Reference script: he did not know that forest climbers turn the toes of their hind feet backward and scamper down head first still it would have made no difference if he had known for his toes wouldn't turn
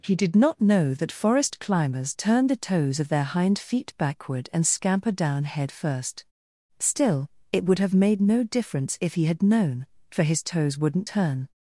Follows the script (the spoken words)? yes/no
yes